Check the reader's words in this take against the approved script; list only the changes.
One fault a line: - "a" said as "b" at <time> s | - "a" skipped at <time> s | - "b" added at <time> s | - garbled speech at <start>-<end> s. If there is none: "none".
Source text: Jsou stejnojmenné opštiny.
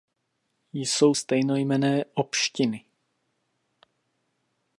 none